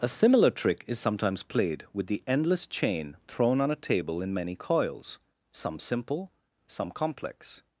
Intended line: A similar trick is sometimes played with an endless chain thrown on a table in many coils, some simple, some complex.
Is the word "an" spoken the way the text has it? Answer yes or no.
no